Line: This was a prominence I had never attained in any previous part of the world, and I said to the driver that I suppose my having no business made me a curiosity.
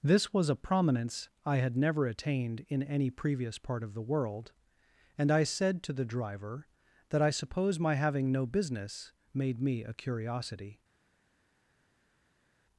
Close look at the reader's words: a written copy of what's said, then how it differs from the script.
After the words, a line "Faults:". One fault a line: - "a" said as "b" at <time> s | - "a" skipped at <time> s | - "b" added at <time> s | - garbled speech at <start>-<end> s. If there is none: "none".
This was a prominence I had never attained in any previous part of the world, and I said to the driver that I suppose my having no business made me a curiosity.
Faults:
none